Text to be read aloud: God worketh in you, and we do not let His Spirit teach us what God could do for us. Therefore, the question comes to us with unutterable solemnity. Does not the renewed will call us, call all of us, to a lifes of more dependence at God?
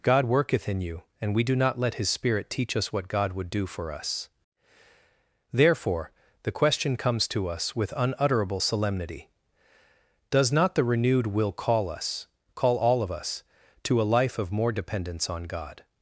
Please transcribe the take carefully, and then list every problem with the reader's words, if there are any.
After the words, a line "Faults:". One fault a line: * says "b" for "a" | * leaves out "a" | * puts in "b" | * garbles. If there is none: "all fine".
God worketh in you, and we do not let His Spirit teach us what God would do for us. Therefore, the question comes to us with unutterable solemnity. Does not the renewed will call us, call all of us, to a life of more dependence on God?
Faults:
* says "would" for "could"
* says "life" for "lifes"
* says "on" for "at"